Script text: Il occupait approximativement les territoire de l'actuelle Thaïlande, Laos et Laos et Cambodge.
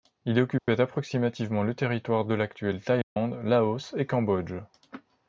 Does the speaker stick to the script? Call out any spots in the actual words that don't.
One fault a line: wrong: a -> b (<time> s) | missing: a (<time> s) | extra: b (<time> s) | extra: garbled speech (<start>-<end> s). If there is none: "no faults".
wrong: les -> le (1.6 s)
missing: Laos et (4.1 s)